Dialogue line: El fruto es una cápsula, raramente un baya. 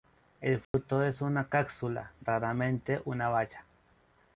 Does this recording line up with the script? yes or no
no